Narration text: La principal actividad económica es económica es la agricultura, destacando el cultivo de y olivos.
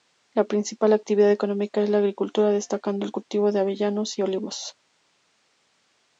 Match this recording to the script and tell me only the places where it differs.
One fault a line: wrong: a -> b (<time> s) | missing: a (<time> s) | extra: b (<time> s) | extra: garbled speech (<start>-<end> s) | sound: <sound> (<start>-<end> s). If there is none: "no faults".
missing: económica es (1.9 s)
extra: avellanos (3.6 s)